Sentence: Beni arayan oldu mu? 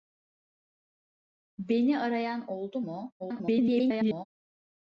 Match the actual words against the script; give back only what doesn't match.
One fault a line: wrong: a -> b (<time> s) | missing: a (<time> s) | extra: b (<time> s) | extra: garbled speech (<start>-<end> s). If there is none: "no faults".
extra: garbled speech (3.2-4.3 s)